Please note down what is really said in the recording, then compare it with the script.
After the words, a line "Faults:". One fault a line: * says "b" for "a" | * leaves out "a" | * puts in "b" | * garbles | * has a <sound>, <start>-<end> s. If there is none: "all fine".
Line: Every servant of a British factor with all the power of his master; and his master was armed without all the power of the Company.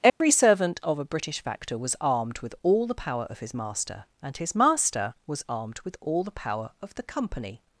Every servant of a British factor was armed with all the power of his master; and his master was armed with all the power of the Company.
Faults:
* has a dropout, 0.1-0.2 s
* puts in "was armed"
* says "with" for "without"